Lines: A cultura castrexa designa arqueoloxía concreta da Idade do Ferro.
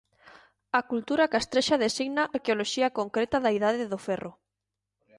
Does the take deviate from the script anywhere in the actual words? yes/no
no